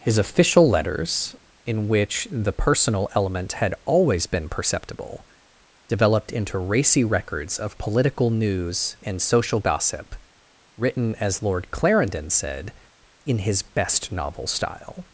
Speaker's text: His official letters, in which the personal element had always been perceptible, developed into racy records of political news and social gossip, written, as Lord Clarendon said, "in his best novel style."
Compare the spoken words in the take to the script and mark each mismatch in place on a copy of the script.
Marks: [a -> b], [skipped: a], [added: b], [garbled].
His official letters, in which the personal element had always been perceptible, developed into racy records of political news and social gossip, written, as Lord Clarendon said, "in his best novel style."